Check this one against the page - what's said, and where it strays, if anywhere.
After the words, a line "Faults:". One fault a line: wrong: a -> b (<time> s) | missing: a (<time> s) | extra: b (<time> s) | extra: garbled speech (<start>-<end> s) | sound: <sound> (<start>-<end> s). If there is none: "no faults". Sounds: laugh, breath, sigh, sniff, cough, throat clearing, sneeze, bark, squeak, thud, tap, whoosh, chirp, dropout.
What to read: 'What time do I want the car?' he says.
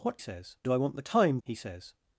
'What says do I want the time?' he says.
Faults:
wrong: time -> says (0.2 s)
wrong: car -> time (1.0 s)